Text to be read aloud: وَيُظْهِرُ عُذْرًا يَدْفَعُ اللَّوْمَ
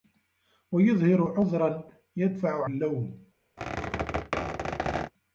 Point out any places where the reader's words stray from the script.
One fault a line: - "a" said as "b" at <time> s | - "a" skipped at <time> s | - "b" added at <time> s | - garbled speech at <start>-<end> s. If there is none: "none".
none